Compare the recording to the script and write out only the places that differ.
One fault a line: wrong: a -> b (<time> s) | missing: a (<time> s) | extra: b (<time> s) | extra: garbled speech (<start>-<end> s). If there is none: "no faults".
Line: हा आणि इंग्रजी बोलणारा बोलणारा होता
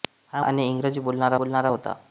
no faults